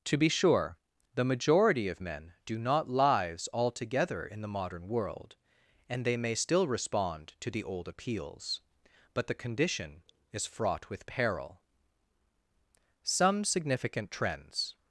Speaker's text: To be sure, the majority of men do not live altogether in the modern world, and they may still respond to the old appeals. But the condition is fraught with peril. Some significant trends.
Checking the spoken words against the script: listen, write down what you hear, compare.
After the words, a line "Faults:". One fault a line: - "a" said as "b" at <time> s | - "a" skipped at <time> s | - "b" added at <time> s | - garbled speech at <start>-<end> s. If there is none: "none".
To be sure, the majority of men do not lives altogether in the modern world, and they may still respond to the old appeals. But the condition is fraught with peril. Some significant trends.
Faults:
- "live" said as "lives" at 2.9 s